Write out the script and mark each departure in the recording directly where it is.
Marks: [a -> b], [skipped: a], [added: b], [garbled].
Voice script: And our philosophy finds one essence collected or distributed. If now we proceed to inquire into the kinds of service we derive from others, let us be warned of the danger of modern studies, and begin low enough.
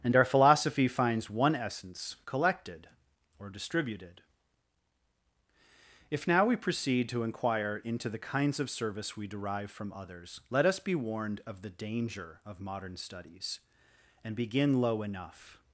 And our philosophy finds one essence collected or distributed. If now we proceed to inquire into the kinds of service we derive from others, let us be warned of the danger of modern studies, and begin low enough.